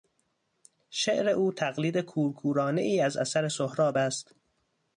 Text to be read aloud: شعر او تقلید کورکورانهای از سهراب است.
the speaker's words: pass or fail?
fail